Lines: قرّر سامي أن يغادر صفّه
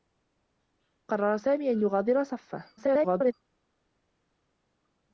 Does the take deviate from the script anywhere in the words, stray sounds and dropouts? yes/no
yes